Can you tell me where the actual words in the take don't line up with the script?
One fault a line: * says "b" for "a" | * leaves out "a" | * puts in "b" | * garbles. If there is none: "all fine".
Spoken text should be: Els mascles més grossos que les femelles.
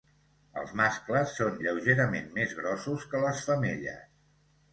* puts in "són lleugerament"